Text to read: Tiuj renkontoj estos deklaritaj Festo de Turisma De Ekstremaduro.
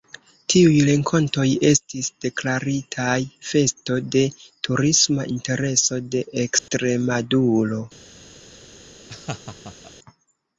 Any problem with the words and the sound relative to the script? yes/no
yes